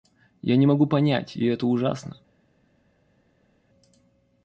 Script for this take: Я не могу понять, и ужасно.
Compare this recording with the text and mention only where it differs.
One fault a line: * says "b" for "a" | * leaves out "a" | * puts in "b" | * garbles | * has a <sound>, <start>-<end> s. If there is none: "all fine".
* puts in "это"